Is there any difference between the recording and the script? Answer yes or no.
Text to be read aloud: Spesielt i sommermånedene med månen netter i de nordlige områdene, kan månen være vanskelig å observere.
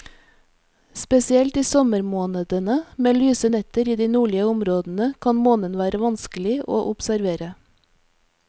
yes